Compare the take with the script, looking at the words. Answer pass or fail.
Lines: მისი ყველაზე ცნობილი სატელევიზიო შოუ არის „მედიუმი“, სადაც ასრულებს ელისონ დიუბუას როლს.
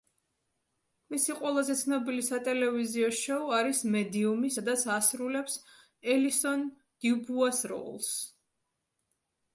pass